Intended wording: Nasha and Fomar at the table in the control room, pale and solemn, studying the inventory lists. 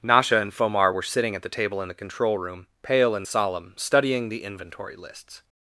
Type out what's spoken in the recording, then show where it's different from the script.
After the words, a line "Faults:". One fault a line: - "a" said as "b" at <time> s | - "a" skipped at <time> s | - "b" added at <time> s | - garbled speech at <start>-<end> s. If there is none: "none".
Nasha and Fomar were sitting at the table in the control room, pale and solemn, studying the inventory lists.
Faults:
- "were sitting" added at 0.9 s